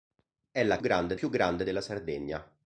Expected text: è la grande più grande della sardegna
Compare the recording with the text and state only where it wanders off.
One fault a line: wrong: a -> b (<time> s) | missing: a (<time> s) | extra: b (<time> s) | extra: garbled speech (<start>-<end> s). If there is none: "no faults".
no faults